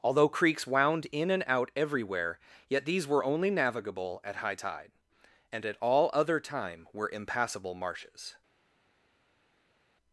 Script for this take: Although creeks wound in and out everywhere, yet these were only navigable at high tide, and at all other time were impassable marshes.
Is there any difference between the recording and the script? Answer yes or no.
no